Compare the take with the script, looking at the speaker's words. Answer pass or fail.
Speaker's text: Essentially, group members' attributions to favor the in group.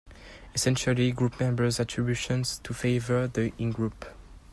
pass